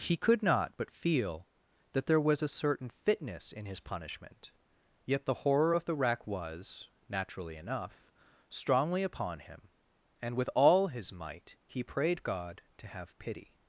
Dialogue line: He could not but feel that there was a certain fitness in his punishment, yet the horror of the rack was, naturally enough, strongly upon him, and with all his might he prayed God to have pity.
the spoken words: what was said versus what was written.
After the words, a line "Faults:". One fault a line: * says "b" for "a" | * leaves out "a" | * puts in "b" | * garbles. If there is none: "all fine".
He could not but feel that there was a certain fitness in his punishment, yet the horror of the rack was, naturally enough, strongly upon him, and with all his might he prayed God to have pity.
Faults:
all fine